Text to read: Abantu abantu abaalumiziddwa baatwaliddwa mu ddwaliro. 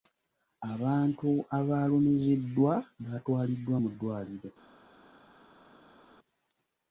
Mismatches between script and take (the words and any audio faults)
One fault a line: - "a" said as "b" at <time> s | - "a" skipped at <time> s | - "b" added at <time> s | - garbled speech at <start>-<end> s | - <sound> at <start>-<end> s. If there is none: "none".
- "abantu" skipped at 1.3 s